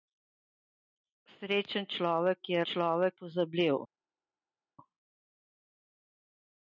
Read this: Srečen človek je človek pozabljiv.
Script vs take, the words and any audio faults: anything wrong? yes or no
no